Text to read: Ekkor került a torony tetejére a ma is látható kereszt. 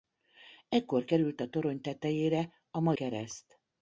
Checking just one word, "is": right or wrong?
wrong